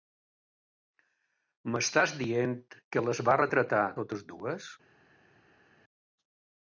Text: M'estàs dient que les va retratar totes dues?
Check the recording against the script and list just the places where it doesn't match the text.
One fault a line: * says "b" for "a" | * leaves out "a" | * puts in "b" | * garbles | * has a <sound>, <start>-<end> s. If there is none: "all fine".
all fine